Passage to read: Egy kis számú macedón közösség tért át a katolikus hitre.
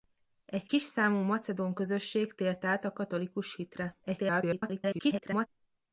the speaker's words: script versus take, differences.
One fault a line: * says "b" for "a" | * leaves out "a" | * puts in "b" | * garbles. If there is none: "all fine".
* garbles